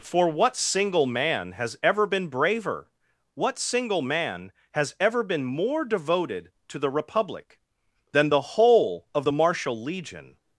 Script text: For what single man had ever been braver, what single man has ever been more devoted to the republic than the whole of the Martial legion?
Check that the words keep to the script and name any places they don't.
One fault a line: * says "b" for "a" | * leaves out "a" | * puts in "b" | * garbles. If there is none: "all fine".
* says "has" for "had"